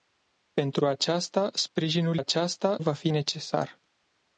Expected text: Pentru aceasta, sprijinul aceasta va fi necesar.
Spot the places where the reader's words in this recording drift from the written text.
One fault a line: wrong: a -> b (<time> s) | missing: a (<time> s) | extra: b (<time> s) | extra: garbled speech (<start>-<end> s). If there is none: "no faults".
no faults